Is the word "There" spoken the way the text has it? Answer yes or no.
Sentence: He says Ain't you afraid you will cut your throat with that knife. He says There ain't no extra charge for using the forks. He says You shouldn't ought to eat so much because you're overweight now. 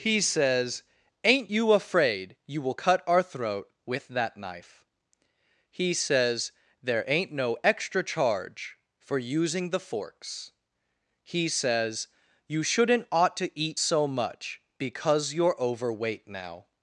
yes